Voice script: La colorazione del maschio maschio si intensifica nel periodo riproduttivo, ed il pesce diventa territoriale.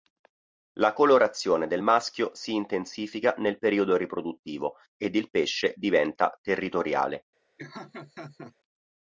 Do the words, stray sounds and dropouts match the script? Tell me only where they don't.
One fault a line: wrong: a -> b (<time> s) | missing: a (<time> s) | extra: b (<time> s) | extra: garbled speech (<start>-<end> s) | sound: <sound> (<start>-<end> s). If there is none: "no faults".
missing: maschio (2.3 s)
sound: laugh (7.6-8.6 s)